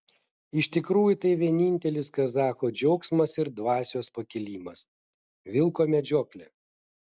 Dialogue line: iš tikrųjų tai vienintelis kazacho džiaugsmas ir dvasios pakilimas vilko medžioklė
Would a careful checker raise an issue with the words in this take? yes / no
no